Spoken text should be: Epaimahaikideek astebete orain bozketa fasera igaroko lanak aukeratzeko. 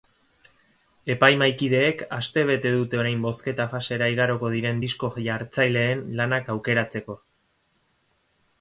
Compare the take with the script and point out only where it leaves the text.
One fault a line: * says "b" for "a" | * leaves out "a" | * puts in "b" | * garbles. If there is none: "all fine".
* puts in "dute"
* puts in "diren disko jartzaileen"